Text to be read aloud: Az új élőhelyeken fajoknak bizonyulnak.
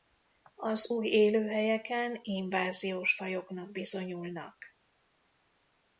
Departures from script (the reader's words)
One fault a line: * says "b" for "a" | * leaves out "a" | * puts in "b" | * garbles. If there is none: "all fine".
* puts in "inváziós"